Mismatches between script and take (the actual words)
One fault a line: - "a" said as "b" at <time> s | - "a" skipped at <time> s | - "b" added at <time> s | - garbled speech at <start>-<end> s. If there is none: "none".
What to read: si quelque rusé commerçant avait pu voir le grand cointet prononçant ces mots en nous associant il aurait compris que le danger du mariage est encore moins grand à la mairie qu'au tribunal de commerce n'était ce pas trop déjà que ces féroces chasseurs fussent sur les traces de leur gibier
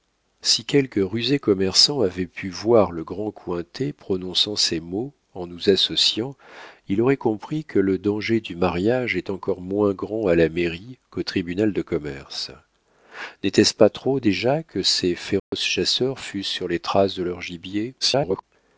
- garbled speech at 18.0-18.4 s